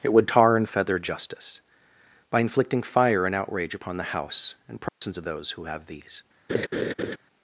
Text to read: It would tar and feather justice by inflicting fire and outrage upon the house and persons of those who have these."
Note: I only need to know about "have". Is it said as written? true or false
true